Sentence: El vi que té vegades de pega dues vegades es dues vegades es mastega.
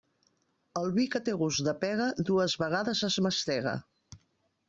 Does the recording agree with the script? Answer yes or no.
no